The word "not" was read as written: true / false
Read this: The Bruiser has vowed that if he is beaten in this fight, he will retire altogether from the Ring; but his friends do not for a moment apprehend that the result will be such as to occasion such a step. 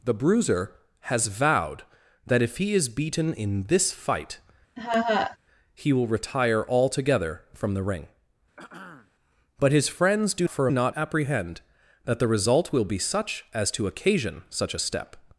false